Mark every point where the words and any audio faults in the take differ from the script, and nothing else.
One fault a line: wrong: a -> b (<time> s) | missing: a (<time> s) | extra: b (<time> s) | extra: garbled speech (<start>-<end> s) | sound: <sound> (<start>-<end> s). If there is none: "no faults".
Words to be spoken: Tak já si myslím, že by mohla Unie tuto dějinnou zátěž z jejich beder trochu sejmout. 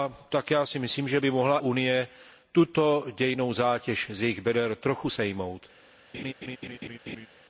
sound: laugh (6.1-7.3 s)